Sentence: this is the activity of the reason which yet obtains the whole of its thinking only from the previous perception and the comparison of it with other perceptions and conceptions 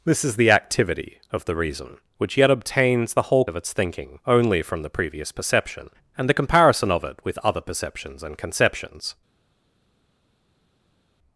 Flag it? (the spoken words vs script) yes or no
no